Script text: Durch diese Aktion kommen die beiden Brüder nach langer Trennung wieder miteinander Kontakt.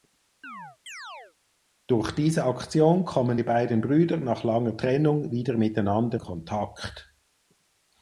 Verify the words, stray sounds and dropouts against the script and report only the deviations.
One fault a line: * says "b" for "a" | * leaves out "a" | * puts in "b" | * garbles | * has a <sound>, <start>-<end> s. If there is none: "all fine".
* has a chirp, 0.4-1.3 s